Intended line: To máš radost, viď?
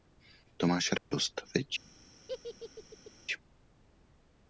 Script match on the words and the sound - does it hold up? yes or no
no